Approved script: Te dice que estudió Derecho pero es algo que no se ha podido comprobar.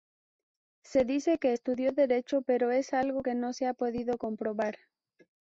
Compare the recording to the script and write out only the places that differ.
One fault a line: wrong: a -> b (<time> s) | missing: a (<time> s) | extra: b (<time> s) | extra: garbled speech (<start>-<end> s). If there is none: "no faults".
wrong: Te -> Se (0.8 s)